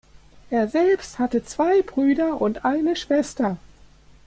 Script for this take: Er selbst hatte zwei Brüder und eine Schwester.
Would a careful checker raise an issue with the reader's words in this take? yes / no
no